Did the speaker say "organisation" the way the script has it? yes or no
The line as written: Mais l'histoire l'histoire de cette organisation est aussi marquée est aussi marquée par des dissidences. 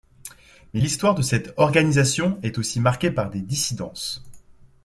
yes